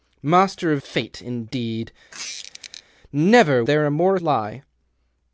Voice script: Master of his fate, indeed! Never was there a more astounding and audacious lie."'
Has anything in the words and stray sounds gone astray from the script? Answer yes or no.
yes